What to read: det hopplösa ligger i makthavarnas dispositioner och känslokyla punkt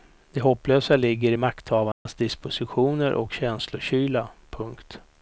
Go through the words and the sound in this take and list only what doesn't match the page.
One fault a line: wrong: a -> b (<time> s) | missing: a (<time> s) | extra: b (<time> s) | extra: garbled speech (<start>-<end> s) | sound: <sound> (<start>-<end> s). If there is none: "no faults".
sound: dropout (1.9-2.1 s)